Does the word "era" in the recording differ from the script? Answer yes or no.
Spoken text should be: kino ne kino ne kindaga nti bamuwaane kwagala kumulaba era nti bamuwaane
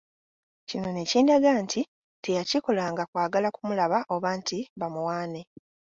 yes